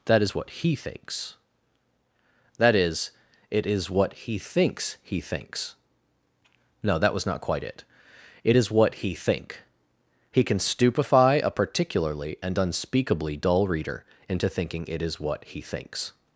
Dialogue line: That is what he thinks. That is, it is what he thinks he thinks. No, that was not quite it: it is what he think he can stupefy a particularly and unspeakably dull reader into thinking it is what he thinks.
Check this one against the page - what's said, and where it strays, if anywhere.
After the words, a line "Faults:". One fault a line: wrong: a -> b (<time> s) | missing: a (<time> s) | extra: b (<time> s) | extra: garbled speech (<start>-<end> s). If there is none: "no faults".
That is what he thinks. That is, it is what he thinks he thinks. No, that was not quite it: it is what he think he can stupefy a particularly and unspeakably dull reader into thinking it is what he thinks.
Faults:
no faults